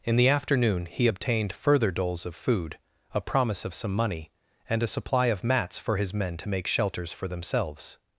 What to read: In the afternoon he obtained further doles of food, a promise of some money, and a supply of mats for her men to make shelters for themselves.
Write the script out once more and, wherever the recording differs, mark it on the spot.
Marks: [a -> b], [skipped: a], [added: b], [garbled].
In the afternoon he obtained further doles of food, a promise of some money, and a supply of mats for [her -> his] men to make shelters for themselves.